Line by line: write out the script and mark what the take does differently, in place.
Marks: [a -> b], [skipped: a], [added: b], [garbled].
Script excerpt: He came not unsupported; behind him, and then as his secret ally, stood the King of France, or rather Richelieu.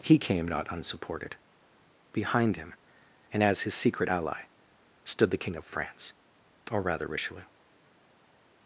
He came not unsupported; behind him, and [skipped: then] as his secret ally, stood the King of France, or rather Richelieu.